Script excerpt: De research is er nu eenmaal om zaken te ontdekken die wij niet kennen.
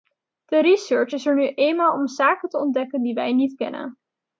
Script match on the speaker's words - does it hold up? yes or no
yes